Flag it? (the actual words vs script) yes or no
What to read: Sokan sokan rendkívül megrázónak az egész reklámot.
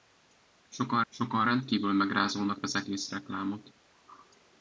no